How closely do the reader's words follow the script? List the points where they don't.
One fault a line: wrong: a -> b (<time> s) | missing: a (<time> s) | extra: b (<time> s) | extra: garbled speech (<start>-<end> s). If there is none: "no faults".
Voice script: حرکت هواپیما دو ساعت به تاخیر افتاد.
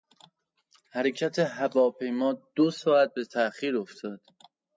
no faults